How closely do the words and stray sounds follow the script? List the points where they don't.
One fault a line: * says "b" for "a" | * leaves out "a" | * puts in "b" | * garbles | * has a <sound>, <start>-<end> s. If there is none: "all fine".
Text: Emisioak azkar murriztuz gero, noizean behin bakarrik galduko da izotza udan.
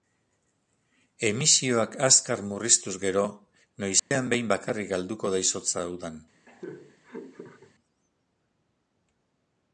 * has a dropout, 4.0-4.1 s
* has a laugh, 6.5-7.7 s